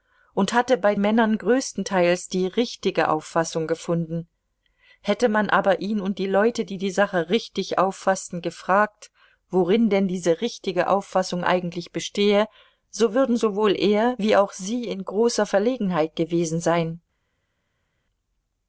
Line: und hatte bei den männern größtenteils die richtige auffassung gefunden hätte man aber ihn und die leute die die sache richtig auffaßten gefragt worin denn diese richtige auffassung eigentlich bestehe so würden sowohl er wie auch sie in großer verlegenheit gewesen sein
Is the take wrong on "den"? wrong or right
wrong